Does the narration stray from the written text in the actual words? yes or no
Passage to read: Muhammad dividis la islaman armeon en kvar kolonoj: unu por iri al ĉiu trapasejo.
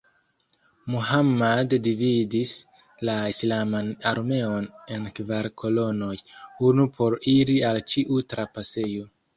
no